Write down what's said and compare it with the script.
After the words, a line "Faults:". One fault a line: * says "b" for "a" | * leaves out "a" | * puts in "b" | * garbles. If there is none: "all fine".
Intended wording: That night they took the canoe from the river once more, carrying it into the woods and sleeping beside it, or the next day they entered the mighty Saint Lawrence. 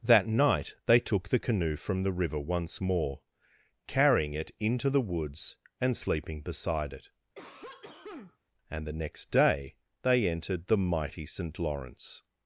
That night they took the canoe from the river once more, carrying it into the woods and sleeping beside it, and the next day they entered the mighty Saint Lawrence.
Faults:
* says "and" for "or"